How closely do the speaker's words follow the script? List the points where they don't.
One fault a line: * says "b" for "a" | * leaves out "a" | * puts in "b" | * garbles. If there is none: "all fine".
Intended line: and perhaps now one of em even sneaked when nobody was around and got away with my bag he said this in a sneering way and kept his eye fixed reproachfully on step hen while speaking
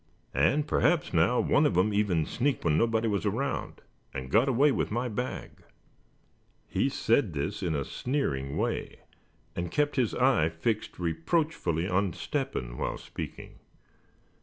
all fine